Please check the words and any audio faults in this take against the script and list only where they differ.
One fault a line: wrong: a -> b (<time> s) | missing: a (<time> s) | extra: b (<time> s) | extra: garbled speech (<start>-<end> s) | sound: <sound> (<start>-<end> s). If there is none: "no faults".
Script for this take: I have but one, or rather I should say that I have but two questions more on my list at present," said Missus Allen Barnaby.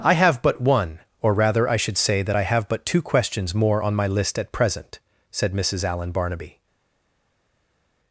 no faults